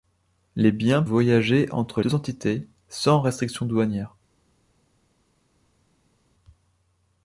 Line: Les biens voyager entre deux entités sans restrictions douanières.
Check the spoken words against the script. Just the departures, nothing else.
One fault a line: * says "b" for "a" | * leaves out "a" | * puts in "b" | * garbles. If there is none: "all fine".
all fine